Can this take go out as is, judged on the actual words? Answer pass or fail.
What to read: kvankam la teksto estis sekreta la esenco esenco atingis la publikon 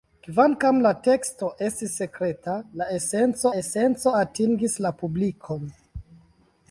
pass